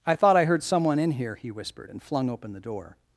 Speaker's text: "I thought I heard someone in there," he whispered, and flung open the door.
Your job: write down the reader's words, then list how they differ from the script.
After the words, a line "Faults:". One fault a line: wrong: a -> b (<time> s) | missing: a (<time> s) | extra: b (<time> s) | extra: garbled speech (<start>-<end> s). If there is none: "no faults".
"I thought I heard someone in here," he whispered, and flung open the door.
Faults:
wrong: there -> here (1.1 s)